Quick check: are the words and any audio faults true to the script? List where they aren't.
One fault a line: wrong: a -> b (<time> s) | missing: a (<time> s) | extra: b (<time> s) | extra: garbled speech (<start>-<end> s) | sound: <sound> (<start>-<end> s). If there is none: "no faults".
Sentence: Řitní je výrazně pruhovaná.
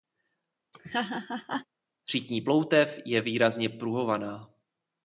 sound: laugh (0.7-1.7 s)
extra: ploutev (2.4 s)